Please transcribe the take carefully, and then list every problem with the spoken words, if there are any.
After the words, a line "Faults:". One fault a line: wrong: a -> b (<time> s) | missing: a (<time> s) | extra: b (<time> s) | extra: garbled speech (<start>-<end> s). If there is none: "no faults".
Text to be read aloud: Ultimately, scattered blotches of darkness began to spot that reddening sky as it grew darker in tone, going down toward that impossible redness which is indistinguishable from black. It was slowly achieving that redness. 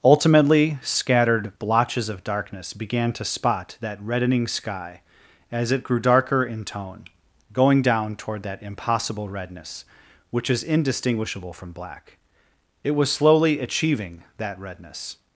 Ultimately, scattered blotches of darkness began to spot that reddening sky as it grew darker in tone, going down toward that impossible redness which is indistinguishable from black. It was slowly achieving that redness.
Faults:
no faults